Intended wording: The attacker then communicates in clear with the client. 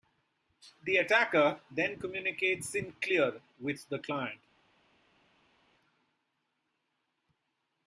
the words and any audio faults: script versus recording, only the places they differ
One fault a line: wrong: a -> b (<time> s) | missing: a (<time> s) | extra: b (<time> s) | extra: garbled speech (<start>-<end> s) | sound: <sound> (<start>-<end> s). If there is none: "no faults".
no faults